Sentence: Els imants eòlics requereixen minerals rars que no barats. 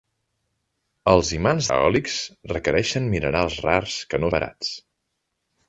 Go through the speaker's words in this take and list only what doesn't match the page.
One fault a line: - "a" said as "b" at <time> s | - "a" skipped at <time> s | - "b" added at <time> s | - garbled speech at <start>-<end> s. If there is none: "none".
none